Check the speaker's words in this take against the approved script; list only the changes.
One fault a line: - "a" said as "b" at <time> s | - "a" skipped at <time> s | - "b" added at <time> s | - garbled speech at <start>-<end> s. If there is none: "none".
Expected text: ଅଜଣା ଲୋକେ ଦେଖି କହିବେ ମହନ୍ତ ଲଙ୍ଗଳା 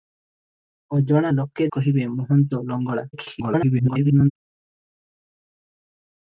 - "ଦେଖି" skipped at 1.7 s
- garbled speech at 3.1-4.3 s